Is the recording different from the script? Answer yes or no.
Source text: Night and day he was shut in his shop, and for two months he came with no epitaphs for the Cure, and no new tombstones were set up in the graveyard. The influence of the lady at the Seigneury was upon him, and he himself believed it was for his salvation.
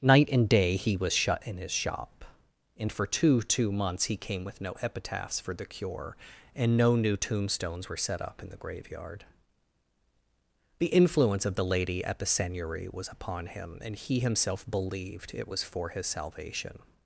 yes